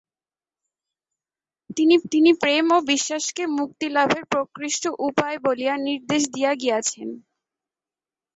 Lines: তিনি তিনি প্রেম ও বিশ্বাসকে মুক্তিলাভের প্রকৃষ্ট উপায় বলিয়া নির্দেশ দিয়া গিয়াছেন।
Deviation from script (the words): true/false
false